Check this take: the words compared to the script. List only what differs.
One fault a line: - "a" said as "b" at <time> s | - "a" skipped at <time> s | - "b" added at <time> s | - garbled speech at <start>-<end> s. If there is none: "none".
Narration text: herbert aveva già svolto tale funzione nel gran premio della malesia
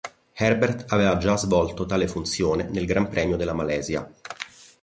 none